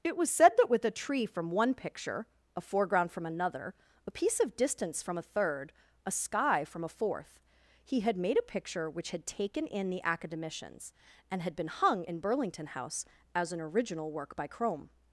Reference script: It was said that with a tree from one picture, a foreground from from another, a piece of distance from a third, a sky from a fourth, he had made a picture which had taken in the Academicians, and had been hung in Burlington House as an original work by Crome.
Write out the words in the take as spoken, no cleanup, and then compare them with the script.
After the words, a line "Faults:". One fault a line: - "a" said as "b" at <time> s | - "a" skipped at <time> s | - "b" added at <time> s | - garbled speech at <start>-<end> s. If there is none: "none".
It was said that with a tree from one picture, a foreground from another, a piece of distance from a third, a sky from a fourth, he had made a picture which had taken in the Academicians, and had been hung in Burlington House as an original work by Crome.
Faults:
- "from" skipped at 3.2 s